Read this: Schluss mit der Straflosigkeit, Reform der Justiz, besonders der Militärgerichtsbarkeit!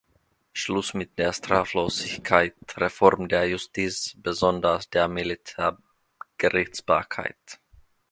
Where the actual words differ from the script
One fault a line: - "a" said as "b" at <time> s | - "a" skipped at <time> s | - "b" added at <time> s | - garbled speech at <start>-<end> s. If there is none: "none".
none